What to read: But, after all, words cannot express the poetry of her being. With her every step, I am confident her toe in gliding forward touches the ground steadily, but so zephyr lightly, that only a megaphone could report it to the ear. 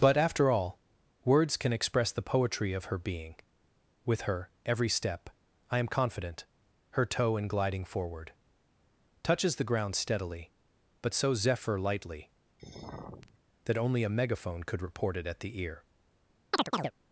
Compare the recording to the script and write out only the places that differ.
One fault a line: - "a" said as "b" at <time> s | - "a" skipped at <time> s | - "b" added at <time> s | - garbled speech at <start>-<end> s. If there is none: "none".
- "cannot" said as "can" at 1.6 s
- "to" said as "at" at 15.3 s